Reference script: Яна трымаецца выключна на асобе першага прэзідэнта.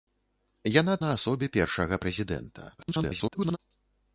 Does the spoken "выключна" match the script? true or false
false